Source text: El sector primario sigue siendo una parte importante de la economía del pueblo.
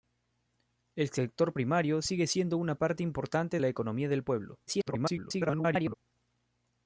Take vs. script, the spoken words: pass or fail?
fail